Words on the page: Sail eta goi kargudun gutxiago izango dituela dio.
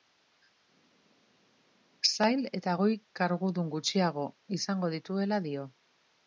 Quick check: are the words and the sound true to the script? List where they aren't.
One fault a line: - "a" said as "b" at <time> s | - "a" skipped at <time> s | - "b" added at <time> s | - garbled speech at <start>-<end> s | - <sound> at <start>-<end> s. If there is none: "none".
none